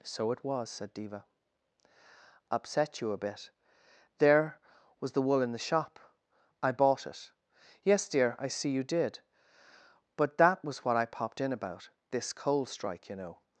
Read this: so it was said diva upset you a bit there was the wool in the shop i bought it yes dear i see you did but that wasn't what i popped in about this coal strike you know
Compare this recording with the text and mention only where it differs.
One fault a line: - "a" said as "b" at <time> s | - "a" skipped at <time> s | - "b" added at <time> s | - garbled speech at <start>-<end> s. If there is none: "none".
- "wasn't" said as "was" at 10.6 s